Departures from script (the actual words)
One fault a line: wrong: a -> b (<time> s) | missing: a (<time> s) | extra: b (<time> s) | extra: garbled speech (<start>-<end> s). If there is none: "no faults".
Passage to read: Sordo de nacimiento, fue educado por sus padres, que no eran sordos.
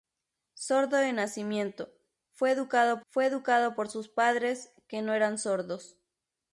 extra: fue educado (3.1 s)